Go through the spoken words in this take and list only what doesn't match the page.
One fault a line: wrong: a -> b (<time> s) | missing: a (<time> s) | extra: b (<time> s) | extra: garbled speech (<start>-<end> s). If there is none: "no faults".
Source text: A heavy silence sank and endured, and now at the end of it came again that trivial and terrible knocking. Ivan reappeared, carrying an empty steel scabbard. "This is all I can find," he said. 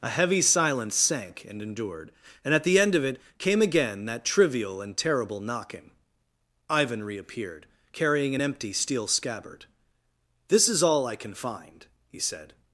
missing: now (2.5 s)